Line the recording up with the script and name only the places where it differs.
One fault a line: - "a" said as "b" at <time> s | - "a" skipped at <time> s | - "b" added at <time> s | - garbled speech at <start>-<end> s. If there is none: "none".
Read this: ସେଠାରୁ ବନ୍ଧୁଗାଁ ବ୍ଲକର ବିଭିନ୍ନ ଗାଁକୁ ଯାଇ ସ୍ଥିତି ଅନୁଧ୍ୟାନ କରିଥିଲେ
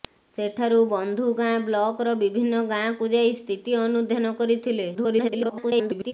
- garbled speech at 4.9-6.1 s